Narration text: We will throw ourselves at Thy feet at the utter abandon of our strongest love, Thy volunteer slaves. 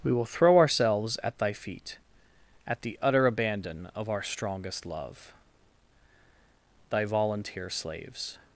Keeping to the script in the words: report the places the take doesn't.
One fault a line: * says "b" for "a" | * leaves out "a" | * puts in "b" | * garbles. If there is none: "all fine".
all fine